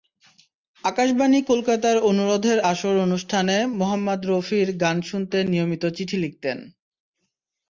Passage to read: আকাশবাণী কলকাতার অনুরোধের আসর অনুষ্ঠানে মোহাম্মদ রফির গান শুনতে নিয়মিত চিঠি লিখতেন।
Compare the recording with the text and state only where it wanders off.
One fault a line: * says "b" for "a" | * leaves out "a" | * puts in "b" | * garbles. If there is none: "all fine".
all fine